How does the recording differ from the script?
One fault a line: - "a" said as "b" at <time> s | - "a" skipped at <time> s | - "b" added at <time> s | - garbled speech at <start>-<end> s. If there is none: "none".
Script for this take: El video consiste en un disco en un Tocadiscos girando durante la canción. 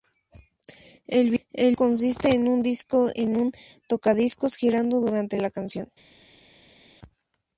none